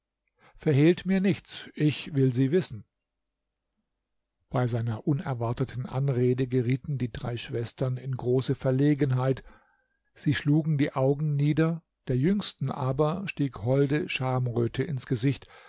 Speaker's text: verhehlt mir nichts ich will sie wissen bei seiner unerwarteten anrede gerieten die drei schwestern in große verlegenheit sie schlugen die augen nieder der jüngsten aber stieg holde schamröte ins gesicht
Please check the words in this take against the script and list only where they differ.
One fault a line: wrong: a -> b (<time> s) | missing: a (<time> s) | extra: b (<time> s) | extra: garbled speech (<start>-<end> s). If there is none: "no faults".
no faults